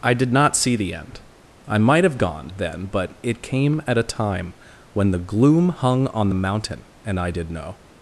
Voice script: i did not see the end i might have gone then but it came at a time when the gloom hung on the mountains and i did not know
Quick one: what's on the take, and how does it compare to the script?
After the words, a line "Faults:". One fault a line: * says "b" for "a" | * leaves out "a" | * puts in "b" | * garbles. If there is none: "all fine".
i did not see the end i might have gone then but it came at a time when the gloom hung on the mountain and i did know
Faults:
* says "mountain" for "mountains"
* leaves out "not"